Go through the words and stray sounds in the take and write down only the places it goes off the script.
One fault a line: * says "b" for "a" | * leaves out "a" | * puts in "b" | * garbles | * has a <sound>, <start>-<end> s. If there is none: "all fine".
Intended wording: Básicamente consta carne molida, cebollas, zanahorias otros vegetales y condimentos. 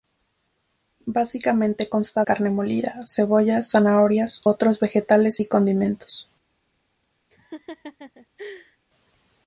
* has a laugh, 7.3-8.8 s